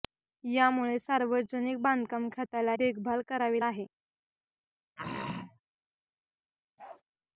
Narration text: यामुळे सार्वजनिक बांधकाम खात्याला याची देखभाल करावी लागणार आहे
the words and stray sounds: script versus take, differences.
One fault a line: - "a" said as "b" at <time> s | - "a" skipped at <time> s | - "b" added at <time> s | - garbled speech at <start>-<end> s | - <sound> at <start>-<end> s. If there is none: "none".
- "याची" skipped at 2.8 s
- "लागणार" skipped at 3.6 s
- throat clearing at 5.0-5.6 s
- bark at 6.8-7.0 s